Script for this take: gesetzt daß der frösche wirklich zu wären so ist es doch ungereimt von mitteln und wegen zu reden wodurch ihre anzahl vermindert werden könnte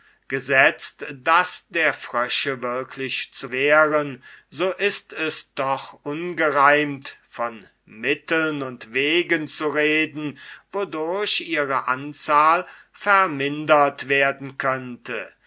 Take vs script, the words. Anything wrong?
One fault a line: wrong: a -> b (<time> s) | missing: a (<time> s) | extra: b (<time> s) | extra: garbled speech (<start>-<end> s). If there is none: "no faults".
no faults